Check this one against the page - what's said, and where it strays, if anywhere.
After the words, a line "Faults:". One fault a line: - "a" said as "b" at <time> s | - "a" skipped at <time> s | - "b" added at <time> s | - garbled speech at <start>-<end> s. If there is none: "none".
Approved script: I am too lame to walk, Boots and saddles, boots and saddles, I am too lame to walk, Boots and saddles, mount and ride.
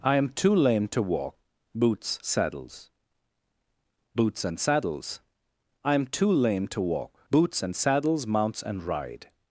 I am too lame to walk, Boots saddles, boots and saddles, I am too lame to walk, Boots and saddles, mounts and ride.
Faults:
- "and" skipped at 2.2 s
- "mount" said as "mounts" at 8.3 s